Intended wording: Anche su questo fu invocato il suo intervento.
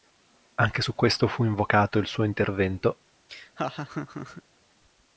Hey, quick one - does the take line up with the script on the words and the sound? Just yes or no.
no